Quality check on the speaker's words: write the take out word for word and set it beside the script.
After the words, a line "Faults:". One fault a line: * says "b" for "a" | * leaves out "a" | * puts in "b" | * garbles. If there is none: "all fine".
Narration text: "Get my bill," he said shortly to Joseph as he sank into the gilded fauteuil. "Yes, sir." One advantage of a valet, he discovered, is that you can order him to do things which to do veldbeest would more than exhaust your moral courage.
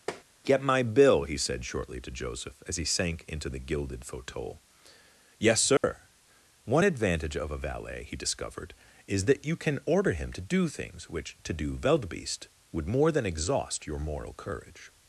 "Get my bill," he said shortly to Joseph as he sank into the gilded fauteuil. "Yes, sir." One advantage of a valet, he discovered, is that you can order him to do things which to do veldbeest would more than exhaust your moral courage.
Faults:
all fine